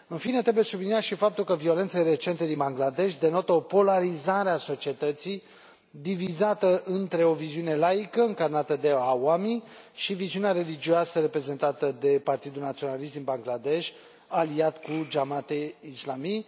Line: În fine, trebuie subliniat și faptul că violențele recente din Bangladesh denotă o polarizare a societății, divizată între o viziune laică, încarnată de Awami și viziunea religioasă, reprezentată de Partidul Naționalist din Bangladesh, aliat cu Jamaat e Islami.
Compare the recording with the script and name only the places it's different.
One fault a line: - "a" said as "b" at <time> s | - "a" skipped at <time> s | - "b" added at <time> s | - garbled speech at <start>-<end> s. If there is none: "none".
none